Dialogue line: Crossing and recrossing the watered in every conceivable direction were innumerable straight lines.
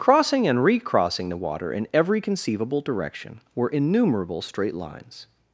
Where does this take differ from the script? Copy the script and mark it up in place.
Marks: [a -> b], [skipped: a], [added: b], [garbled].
Crossing and recrossing the [watered -> water] in every conceivable direction were innumerable straight lines.